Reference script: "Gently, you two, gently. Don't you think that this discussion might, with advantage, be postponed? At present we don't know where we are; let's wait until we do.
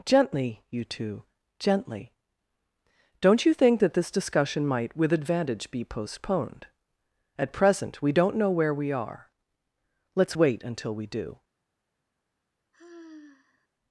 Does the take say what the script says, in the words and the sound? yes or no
no